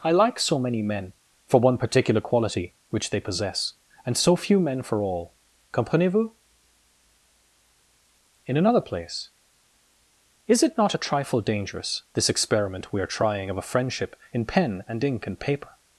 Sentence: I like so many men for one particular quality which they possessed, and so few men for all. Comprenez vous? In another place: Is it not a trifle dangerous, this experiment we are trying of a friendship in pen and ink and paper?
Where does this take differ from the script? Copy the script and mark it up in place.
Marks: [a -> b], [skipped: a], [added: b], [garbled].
I like so many men for one particular quality which they [possessed, -> possess] and so few men for all. Comprenez vous? In another place: Is it not a trifle dangerous, this experiment we are trying of a friendship in pen and ink and paper?